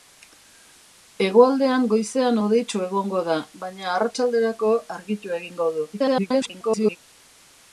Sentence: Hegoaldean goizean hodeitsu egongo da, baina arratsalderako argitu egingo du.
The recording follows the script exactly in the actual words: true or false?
false